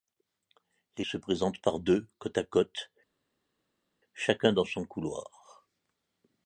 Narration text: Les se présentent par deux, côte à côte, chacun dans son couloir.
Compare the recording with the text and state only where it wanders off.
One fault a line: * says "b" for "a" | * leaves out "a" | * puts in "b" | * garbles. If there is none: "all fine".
all fine